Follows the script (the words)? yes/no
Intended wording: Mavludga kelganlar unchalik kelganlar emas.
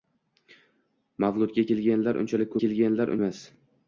yes